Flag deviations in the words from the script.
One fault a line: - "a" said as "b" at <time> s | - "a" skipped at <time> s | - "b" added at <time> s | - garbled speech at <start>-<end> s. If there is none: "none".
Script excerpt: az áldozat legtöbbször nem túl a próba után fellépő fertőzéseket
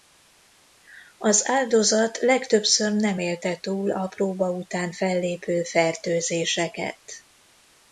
- "élte" added at 3.2 s